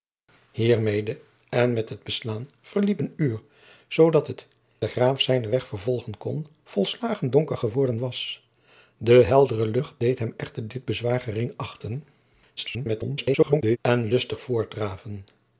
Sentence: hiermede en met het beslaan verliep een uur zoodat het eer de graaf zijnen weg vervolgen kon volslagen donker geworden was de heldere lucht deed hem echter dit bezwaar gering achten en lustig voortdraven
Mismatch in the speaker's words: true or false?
true